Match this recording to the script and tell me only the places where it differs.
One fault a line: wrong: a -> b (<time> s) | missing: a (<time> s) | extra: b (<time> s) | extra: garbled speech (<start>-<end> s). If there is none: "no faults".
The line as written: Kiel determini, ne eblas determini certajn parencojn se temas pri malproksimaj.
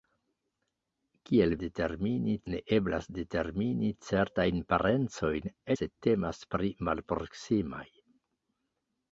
no faults